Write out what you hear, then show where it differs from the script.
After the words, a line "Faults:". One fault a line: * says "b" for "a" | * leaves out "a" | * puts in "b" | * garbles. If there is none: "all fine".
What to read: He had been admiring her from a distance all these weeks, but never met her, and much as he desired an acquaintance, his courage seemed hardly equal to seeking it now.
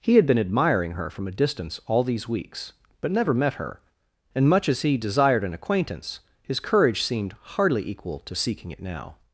He had been admiring her from a distance all these weeks, but never met her, and much as he desired an acquaintance, his courage seemed hardly equal to seeking it now.
Faults:
all fine